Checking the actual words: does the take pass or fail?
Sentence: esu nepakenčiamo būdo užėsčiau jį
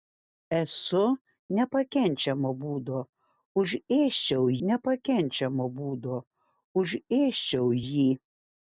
fail